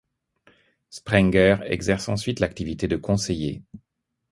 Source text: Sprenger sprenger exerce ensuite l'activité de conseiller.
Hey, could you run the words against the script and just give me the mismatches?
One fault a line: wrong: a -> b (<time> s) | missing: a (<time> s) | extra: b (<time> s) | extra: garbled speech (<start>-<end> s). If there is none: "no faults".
missing: sprenger (1.6 s)